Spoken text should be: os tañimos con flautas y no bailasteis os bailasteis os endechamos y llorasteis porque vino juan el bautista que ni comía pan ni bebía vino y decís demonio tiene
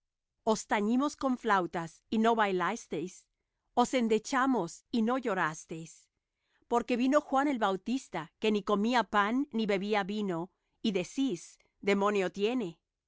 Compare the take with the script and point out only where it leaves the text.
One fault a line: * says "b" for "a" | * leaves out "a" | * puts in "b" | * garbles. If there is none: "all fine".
* leaves out "bailasteis os"
* puts in "no"